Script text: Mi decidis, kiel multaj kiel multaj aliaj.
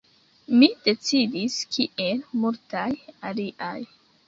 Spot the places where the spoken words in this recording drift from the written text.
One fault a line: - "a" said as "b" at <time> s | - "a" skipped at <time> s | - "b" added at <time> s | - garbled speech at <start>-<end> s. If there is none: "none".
- "kiel multaj" skipped at 2.9 s